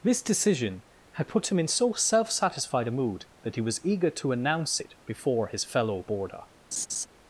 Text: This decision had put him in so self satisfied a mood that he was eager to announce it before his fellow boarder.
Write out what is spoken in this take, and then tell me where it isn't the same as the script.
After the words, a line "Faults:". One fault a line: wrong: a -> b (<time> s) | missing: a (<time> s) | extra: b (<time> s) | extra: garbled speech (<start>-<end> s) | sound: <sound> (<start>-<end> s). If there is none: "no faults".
This decision had put him in so self satisfied a mood that he was eager to announce it before his fellow boarder.
Faults:
sound: laugh (6.7-7.1 s)